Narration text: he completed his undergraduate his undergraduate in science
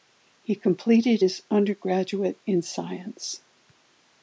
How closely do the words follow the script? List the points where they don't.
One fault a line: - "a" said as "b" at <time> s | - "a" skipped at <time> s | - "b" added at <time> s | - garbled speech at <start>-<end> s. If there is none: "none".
- "his undergraduate" skipped at 2.4 s